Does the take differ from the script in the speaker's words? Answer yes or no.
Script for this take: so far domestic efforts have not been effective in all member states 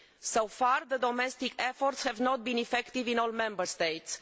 no